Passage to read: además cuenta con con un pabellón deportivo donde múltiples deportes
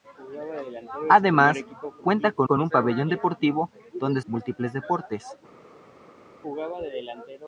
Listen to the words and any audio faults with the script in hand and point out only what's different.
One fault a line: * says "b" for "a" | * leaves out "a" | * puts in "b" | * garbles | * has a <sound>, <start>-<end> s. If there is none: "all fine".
all fine